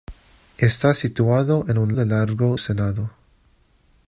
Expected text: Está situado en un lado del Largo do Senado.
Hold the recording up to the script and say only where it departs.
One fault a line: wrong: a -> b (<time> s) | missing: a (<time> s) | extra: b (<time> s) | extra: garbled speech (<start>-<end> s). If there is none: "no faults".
missing: lado (1.9 s)
missing: do (2.6 s)